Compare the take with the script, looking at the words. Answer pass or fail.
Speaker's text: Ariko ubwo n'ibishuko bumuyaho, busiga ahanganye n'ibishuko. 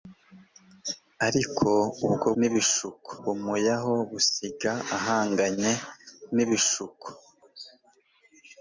pass